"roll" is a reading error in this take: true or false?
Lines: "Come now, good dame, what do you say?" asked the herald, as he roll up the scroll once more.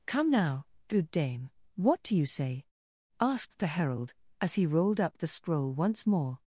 true